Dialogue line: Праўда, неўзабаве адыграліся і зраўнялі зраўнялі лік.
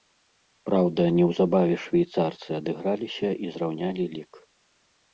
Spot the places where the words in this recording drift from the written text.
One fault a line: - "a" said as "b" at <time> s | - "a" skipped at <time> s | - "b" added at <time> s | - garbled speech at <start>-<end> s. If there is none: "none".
- "швейцарцы" added at 1.9 s
- "зраўнялі" skipped at 4.1 s